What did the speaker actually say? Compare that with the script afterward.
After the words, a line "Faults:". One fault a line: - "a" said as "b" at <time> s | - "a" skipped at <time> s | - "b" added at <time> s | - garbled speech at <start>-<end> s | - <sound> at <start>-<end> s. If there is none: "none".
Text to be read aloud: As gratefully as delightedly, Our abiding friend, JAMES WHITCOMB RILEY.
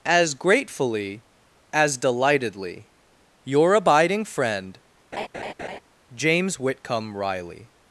As gratefully as delightedly, Your abiding friend, JAMES WHITCOMB RILEY.
Faults:
- "Our" said as "Your" at 3.4 s
- laugh at 5.1-5.8 s